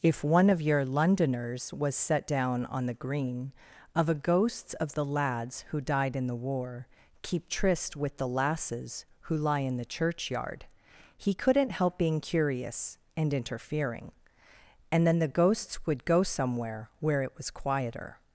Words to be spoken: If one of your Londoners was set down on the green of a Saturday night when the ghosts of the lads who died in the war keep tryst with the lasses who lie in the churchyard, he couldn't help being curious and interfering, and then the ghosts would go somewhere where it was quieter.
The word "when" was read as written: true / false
false